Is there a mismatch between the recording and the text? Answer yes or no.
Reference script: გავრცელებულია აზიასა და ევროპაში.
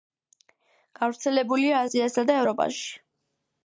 no